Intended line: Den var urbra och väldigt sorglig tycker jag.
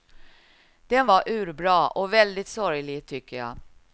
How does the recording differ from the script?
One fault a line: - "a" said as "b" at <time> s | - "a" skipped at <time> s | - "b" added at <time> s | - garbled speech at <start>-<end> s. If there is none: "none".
none